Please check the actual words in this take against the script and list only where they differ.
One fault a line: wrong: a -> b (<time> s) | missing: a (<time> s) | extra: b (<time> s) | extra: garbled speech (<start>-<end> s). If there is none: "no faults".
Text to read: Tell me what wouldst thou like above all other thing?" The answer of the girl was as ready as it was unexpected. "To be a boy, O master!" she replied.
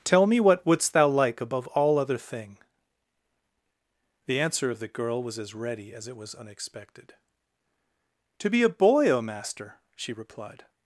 no faults